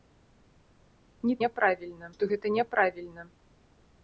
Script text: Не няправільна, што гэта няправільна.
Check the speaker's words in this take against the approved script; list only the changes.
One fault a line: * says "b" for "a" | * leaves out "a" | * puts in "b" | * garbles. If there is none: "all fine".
all fine